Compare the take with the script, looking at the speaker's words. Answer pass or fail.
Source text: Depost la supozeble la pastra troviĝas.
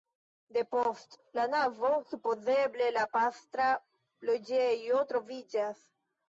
fail